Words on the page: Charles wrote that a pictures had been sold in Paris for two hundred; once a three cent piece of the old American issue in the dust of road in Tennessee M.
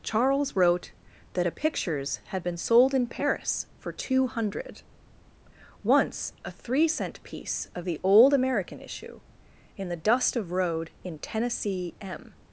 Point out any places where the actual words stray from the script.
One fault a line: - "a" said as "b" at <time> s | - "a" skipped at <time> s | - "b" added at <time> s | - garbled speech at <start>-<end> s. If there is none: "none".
none